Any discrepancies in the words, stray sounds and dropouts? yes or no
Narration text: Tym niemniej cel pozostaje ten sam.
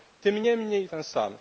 yes